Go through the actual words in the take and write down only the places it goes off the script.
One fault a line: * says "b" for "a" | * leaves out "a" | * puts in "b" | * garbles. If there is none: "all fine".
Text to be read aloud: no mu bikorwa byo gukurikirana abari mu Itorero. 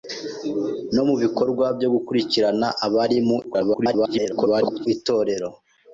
* garbles